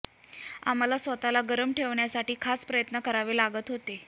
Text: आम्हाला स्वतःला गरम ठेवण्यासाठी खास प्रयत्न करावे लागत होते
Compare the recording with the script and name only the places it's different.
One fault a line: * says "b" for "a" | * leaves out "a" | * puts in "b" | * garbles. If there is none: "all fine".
all fine